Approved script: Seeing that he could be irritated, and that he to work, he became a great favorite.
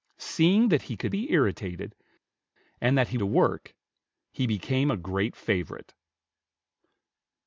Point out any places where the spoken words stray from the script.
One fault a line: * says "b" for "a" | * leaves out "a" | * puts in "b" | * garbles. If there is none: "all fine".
all fine